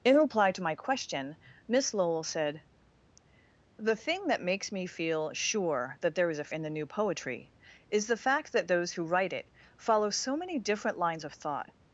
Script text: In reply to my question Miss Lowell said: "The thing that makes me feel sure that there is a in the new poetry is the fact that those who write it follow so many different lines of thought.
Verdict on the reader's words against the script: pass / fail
pass